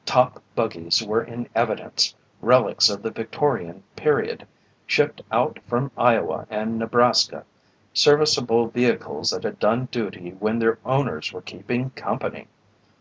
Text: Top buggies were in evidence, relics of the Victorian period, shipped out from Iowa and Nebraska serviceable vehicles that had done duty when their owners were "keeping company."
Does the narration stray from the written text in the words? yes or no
no